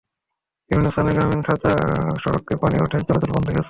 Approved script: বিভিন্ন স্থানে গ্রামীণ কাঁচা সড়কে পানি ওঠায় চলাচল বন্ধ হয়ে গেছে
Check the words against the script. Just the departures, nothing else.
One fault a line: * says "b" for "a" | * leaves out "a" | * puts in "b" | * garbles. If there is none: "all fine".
* leaves out "হয়ে"